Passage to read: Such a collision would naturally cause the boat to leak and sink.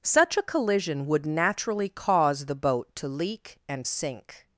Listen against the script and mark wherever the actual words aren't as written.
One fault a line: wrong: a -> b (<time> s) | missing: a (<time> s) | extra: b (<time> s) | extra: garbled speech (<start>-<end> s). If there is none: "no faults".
no faults